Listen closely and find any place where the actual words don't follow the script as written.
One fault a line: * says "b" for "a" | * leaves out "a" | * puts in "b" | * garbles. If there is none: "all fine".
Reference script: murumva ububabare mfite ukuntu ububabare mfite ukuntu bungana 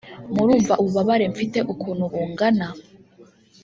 * leaves out "ububabare mfite ukuntu"